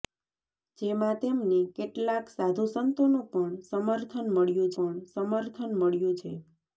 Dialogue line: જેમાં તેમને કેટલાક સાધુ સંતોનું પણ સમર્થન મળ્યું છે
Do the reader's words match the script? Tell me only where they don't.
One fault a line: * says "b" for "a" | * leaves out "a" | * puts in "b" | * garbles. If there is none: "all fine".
* puts in "પણ સમર્થન મળ્યું"